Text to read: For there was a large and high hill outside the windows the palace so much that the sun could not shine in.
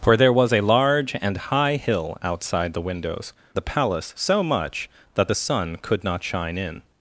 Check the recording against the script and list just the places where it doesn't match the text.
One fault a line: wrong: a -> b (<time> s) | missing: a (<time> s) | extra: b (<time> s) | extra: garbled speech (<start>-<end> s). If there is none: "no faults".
no faults